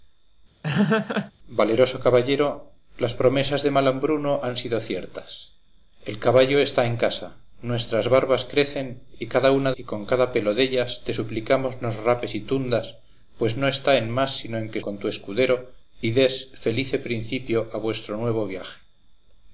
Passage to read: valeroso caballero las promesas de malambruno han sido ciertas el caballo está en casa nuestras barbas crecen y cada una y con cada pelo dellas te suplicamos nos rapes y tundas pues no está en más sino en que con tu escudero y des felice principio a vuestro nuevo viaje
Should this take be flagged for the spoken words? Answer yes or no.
no